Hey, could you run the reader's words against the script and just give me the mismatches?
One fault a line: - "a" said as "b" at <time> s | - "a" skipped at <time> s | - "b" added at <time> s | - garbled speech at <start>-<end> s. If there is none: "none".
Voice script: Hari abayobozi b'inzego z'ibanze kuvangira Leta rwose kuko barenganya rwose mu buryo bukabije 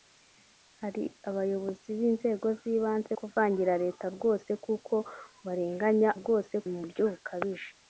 none